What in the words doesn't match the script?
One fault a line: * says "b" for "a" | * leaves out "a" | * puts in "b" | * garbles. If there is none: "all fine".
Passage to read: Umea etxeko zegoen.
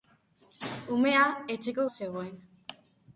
all fine